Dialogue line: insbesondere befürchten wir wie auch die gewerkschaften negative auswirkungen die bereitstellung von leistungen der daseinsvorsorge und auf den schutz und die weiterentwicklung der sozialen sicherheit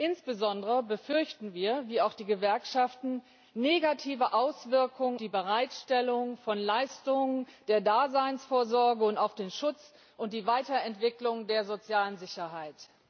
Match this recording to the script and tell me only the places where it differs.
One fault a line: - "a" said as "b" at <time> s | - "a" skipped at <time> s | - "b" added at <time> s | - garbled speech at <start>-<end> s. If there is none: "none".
none